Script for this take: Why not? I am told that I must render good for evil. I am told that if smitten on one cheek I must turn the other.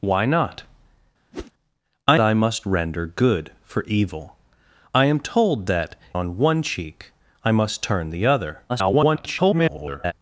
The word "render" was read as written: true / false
true